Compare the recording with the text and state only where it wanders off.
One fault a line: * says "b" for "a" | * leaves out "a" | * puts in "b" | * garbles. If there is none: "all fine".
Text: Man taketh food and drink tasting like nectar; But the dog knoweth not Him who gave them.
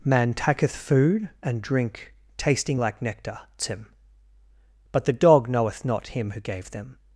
* puts in "tim"